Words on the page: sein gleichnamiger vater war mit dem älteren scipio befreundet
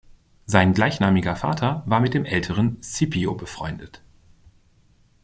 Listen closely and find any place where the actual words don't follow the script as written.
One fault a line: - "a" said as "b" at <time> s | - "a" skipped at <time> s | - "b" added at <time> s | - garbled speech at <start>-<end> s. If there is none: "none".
none